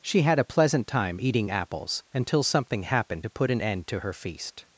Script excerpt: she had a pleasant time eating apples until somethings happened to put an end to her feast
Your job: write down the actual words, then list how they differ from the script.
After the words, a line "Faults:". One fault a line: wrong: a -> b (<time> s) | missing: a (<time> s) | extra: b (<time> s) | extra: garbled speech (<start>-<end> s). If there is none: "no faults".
she had a pleasant time eating apples until something happened to put an end to her feast
Faults:
wrong: somethings -> something (2.4 s)